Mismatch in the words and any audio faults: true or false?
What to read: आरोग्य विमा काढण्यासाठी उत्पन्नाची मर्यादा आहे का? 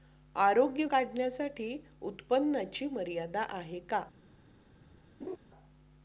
true